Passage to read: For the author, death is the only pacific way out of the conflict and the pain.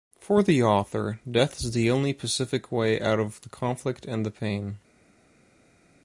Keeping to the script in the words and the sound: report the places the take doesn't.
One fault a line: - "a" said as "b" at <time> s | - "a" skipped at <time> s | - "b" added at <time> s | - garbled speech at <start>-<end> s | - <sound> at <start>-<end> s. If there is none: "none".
none